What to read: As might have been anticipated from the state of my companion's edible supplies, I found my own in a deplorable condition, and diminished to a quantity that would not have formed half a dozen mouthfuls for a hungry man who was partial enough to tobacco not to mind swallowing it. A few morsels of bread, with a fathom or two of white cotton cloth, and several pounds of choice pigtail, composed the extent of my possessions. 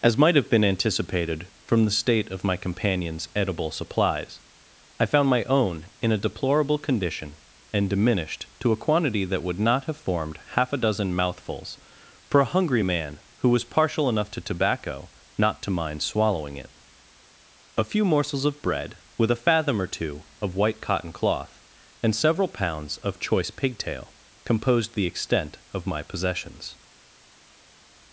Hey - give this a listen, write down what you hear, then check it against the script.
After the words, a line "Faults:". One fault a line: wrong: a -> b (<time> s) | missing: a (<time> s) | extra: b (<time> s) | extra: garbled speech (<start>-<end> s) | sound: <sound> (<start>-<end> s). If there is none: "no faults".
As might have been anticipated from the state of my companion's edible supplies, I found my own in a deplorable condition, and diminished to a quantity that would not have formed half a dozen mouthfuls for a hungry man who was partial enough to tobacco not to mind swallowing it. A few morsels of bread, with a fathom or two of white cotton cloth, and several pounds of choice pigtail, composed the extent of my possessions.
Faults:
no faults